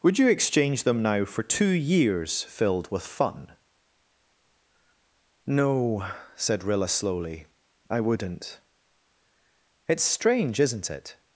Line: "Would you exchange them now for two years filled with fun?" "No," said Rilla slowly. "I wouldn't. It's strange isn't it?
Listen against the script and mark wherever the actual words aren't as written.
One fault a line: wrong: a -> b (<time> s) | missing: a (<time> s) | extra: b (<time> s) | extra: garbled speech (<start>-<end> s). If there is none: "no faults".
no faults